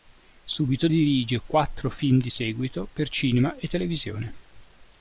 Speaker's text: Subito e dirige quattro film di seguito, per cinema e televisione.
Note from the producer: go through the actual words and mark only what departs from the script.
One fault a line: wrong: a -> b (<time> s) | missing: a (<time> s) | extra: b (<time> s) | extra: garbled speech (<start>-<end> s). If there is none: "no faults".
no faults